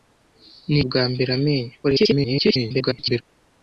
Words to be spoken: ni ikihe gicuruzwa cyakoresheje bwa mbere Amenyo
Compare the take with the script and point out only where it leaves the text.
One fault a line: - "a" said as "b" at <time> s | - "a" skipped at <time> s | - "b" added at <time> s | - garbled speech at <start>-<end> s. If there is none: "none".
- "ikihe gicuruzwa cyakoresheje" skipped at 0.8 s
- garbled speech at 1.8-3.2 s